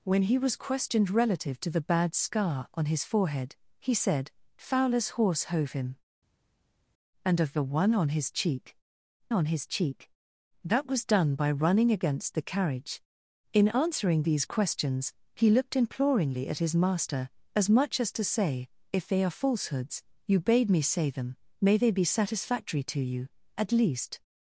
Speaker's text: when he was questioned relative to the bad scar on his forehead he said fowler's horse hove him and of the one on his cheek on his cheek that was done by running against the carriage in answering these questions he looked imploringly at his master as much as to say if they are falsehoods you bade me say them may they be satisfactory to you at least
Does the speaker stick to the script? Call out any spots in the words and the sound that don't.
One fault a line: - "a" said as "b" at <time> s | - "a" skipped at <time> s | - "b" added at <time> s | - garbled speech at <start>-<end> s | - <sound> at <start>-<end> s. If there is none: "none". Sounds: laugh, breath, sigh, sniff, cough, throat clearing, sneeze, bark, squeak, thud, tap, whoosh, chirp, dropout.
none